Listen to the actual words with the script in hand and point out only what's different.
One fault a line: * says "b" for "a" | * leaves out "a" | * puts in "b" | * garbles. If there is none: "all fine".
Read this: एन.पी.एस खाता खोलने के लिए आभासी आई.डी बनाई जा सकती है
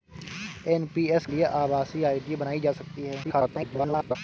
* leaves out "खाता खोलने के"
* garbles